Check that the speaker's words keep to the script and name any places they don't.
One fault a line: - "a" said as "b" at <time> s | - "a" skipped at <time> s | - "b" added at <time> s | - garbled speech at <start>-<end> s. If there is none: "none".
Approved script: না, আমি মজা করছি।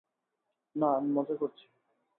none